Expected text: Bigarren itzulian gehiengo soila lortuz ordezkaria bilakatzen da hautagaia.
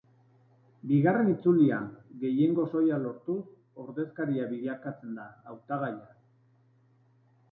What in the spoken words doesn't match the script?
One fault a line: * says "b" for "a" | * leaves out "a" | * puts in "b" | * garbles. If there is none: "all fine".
all fine